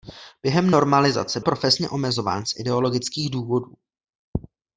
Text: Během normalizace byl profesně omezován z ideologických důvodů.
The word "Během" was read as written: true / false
true